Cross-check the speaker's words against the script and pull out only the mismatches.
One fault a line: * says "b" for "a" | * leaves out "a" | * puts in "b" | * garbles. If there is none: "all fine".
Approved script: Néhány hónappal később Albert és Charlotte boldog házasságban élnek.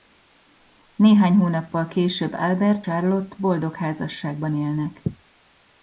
* leaves out "és"